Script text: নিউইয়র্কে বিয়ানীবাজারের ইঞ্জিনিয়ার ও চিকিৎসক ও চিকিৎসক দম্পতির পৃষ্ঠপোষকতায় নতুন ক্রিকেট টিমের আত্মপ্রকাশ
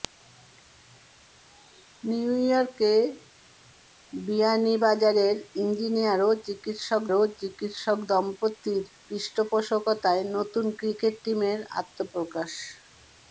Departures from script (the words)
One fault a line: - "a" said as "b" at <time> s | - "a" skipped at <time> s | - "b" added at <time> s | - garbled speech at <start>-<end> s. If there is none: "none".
none